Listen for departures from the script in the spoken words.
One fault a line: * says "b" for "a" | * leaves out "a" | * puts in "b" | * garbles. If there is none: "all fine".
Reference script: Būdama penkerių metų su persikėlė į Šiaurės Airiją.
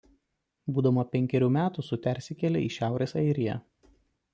all fine